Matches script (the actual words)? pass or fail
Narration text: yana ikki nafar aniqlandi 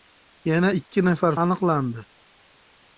pass